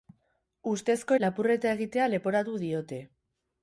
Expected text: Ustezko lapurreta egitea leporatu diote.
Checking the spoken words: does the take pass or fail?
pass